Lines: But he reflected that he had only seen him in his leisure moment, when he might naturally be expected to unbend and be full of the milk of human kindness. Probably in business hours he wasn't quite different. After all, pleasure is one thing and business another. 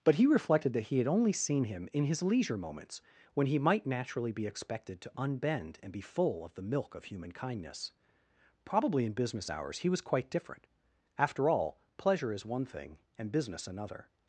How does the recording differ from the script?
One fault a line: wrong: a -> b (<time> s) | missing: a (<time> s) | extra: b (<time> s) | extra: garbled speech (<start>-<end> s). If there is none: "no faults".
wrong: moment -> moments (2.6 s)
wrong: wasn't -> was (9.9 s)